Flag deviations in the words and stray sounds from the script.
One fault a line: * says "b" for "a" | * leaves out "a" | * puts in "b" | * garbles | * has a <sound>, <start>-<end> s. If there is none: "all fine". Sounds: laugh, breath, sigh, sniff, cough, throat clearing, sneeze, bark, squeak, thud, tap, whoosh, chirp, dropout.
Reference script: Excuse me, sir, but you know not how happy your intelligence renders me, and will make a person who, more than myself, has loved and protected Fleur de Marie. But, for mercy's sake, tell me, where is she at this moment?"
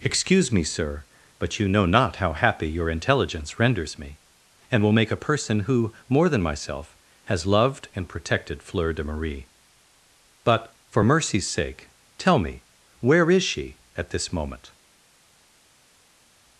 all fine